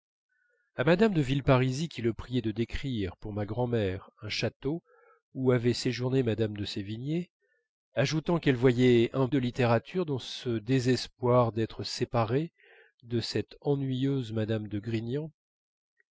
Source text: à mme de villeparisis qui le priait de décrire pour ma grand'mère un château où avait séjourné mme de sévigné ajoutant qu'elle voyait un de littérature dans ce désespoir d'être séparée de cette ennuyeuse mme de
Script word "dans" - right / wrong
right